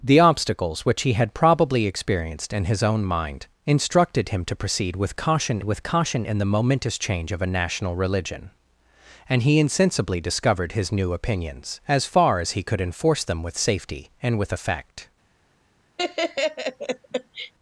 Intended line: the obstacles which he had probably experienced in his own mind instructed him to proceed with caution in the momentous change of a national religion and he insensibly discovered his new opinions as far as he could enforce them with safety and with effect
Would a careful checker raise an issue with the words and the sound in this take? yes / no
yes